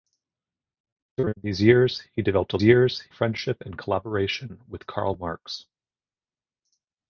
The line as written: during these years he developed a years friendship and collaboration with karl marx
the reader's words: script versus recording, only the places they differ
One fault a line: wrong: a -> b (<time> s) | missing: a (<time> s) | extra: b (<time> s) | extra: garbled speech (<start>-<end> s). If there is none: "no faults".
no faults